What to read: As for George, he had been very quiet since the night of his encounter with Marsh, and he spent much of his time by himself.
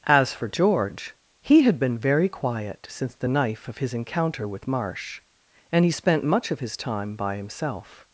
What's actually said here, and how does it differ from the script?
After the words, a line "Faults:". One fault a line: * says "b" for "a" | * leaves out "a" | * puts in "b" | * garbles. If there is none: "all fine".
As for George, he had been very quiet since the knife of his encounter with Marsh, and he spent much of his time by himself.
Faults:
* says "knife" for "night"